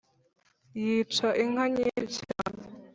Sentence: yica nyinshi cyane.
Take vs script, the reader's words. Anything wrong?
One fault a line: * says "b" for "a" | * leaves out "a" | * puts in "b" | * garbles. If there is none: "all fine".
* puts in "inka"